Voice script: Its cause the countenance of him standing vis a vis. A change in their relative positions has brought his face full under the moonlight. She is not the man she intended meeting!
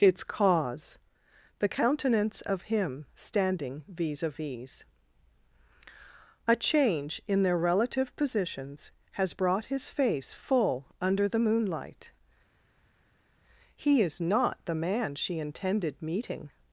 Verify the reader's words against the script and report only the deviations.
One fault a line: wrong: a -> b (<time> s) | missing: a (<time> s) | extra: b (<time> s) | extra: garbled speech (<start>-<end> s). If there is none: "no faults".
wrong: She -> He (13.8 s)